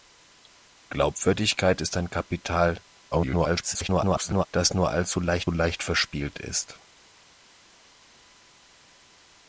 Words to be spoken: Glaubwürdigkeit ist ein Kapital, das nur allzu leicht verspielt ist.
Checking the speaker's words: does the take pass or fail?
fail